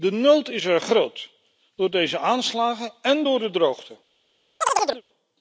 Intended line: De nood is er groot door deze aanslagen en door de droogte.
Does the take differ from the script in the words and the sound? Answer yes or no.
yes